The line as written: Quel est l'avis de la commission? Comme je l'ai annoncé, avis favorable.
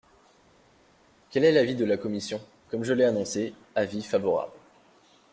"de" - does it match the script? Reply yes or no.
yes